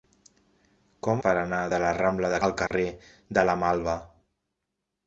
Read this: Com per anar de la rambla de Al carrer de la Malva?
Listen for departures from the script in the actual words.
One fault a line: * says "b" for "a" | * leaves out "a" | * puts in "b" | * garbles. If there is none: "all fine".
all fine